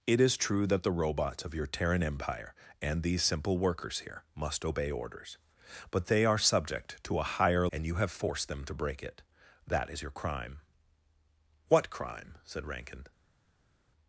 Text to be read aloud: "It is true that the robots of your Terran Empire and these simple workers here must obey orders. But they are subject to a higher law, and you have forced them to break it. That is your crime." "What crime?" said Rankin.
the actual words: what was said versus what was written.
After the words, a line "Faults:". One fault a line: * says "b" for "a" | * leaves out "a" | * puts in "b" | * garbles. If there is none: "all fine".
"It is true that the robots of your Terran Empire and these simple workers here must obey orders. But they are subject to a higher and you have forced them to break it. That is your crime." "What crime?" said Rankin.
Faults:
* leaves out "law"